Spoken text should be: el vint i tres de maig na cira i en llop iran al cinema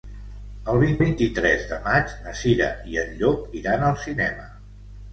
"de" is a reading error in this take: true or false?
false